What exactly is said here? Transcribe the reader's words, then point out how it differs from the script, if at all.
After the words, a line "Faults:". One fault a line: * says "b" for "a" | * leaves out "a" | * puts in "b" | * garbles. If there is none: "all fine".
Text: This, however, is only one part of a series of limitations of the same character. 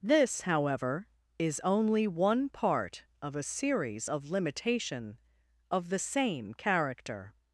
This, however, is only one part of a series of limitation of the same character.
Faults:
* says "limitation" for "limitations"